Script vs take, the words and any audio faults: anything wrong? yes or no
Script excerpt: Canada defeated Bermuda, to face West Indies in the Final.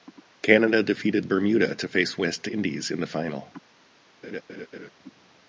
yes